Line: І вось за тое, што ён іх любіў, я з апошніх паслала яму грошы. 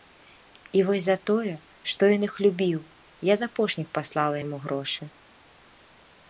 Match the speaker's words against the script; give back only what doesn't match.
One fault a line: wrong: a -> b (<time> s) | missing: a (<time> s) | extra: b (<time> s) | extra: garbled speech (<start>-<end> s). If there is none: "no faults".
no faults